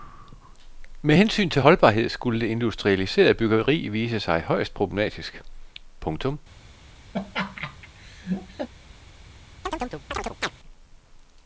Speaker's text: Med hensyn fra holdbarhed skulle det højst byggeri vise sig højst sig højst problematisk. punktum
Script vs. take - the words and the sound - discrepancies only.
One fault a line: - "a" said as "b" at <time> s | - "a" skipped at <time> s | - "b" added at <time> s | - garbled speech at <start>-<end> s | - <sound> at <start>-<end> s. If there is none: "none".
- "fra" said as "til" at 1.5 s
- "højst" said as "industrialiserede" at 2.5 s
- "sig højst" skipped at 4.7 s
- laugh at 7.1-8.7 s
- chirp at 9.6-10.5 s